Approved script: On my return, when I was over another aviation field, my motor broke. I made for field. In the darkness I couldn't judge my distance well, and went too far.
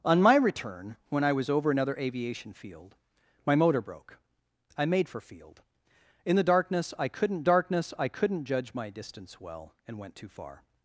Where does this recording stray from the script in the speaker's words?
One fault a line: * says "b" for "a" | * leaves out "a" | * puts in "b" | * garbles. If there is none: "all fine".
* puts in "darkness I couldn't"